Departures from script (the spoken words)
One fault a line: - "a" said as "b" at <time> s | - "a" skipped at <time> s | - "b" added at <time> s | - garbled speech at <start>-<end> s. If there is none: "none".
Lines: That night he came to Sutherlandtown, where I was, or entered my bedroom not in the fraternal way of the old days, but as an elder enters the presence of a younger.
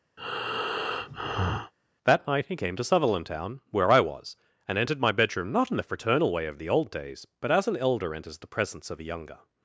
- "or" said as "and" at 4.7 s